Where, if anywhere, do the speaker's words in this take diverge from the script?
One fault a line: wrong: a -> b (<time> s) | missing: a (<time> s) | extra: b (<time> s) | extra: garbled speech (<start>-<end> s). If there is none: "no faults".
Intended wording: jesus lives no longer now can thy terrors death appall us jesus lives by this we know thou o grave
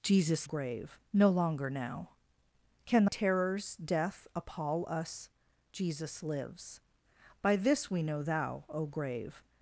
wrong: lives -> grave (0.4 s)
missing: thy (3.1 s)